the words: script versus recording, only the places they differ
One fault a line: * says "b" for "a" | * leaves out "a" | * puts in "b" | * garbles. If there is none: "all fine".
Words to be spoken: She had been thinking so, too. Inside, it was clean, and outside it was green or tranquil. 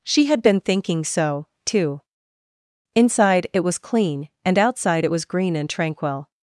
* says "and" for "or"